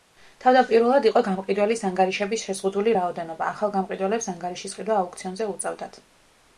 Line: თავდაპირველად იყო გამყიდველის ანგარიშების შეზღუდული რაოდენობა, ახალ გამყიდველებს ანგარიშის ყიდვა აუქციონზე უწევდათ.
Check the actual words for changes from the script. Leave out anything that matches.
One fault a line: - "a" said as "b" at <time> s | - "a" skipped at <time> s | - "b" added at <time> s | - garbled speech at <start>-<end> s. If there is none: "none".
none